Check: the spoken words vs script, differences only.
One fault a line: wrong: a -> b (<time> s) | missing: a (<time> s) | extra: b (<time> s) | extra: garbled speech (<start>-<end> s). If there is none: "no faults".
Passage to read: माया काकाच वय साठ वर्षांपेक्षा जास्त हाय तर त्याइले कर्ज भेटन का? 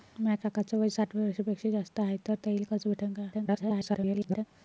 extra: garbled speech (3.3-4.5 s)